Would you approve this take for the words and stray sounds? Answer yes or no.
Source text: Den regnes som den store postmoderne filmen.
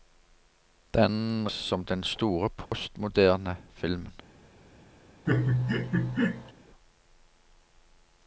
no